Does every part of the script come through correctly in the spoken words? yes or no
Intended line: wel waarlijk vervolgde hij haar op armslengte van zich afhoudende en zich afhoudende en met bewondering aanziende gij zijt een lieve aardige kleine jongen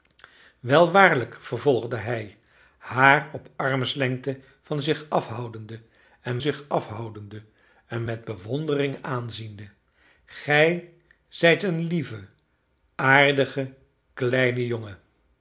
yes